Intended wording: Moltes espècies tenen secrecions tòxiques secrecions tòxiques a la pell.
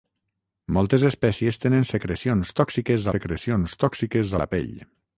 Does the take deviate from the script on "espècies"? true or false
false